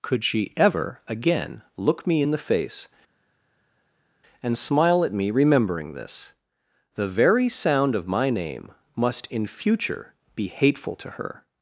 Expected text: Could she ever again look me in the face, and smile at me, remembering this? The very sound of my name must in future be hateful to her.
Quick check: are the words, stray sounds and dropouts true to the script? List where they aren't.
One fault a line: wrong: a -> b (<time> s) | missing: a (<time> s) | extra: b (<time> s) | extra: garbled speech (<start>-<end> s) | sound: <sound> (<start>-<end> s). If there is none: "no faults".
no faults